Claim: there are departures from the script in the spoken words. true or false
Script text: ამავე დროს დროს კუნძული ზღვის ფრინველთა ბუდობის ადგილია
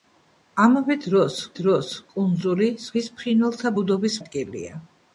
false